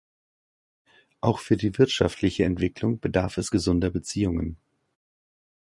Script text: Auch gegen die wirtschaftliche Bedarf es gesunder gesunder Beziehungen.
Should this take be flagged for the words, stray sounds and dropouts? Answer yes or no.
yes